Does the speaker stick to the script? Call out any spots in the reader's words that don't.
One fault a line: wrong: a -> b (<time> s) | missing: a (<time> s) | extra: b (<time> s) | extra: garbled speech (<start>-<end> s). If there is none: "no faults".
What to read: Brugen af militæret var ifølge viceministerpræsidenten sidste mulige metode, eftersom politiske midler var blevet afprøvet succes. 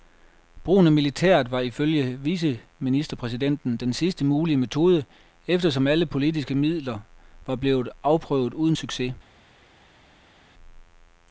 extra: den (3.8 s)
extra: alle (5.9 s)
extra: uden (8.5 s)